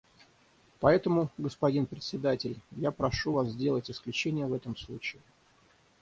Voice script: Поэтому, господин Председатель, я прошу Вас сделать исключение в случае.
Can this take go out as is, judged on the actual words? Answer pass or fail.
fail